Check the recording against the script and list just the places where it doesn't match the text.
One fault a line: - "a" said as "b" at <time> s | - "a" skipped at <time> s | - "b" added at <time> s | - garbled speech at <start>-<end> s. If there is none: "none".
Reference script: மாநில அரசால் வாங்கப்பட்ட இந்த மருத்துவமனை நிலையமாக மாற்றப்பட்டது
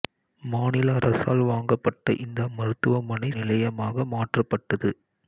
none